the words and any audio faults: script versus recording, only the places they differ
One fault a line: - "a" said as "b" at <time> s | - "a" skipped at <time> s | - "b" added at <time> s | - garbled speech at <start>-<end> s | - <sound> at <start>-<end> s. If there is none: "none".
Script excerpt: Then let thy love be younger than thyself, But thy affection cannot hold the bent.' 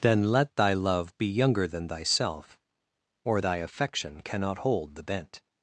- "But" said as "Or" at 3.2 s